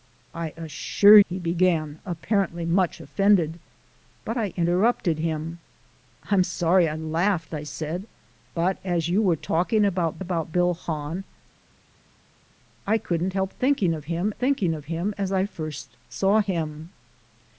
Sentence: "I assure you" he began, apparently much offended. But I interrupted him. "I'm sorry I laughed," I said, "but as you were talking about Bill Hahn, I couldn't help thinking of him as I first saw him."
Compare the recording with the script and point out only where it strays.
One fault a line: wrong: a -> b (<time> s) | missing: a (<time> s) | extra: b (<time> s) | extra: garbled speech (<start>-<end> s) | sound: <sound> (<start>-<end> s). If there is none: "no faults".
missing: you (1.2 s)
extra: about (10.2 s)
extra: thinking of him (14.3 s)